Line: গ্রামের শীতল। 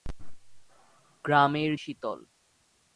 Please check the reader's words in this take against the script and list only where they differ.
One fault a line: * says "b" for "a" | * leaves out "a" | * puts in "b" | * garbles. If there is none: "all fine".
all fine